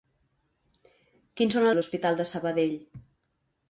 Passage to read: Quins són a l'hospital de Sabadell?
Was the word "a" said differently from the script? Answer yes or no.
no